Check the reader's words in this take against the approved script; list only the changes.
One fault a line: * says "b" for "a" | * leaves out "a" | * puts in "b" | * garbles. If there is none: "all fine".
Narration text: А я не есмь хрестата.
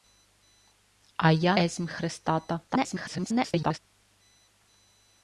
* leaves out "не"
* garbles